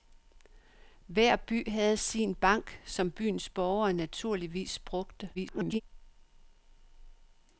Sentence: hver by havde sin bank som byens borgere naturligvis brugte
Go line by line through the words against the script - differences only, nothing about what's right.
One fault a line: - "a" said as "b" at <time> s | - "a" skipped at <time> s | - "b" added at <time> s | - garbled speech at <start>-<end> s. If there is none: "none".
- garbled speech at 5.3-5.8 s